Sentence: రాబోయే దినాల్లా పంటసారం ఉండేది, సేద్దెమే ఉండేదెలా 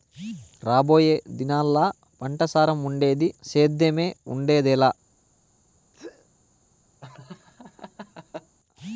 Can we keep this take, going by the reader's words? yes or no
yes